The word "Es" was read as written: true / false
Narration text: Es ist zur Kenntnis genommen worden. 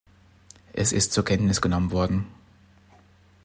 true